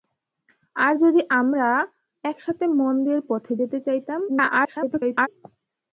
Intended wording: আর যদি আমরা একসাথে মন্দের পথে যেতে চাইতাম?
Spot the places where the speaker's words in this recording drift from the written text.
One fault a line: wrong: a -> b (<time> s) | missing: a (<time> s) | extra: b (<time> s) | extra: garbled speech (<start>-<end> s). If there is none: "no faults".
extra: garbled speech (4.3-5.3 s)